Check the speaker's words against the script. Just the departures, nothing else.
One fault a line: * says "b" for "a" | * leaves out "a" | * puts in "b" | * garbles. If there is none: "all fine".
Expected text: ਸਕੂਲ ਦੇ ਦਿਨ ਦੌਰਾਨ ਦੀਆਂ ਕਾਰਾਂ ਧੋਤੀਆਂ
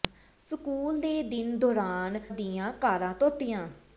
all fine